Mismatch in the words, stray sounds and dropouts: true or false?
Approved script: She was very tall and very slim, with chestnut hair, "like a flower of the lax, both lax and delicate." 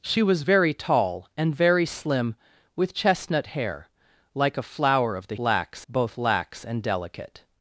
false